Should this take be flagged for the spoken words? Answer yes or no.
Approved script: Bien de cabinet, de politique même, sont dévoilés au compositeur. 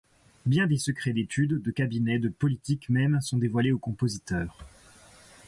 yes